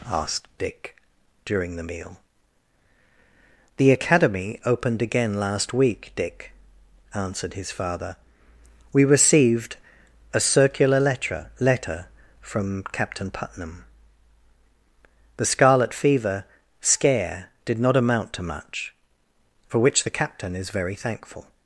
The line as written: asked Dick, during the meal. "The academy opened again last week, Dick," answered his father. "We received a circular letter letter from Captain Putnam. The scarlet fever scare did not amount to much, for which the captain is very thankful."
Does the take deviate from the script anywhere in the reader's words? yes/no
no